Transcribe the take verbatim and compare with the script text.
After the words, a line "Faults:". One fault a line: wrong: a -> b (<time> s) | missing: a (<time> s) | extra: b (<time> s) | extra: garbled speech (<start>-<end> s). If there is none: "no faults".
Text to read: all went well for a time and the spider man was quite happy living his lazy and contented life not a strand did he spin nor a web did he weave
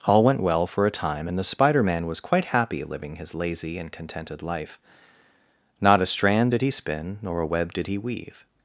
all went well for a time and the spider man was quite happy living his lazy and contented life not a strand did he spin nor a web did he weave
Faults:
no faults